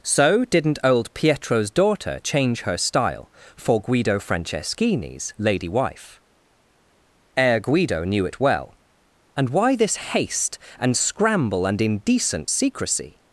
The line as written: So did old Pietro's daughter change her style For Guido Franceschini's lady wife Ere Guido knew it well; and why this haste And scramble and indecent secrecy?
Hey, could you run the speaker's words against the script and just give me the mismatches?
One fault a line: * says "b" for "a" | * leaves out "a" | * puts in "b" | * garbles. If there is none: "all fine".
* says "didn't" for "did"